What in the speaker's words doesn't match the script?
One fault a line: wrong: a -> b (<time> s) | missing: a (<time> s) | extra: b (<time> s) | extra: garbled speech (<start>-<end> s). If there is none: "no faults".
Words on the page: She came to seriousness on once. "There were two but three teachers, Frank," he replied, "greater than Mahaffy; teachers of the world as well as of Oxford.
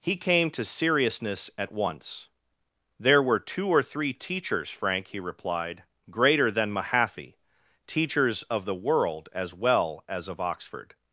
wrong: She -> He (0.0 s)
wrong: on -> at (1.6 s)
wrong: but -> or (3.7 s)